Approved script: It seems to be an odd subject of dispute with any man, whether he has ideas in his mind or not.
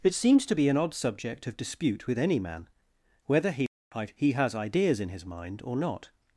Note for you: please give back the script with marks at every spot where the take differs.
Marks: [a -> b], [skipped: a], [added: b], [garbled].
It seems to be an odd subject of dispute with any man, whether he [added: he] has ideas in his mind or not.